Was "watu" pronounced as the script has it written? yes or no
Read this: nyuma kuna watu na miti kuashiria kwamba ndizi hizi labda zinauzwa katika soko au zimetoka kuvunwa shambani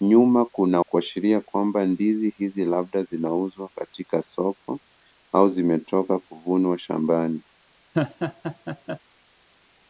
no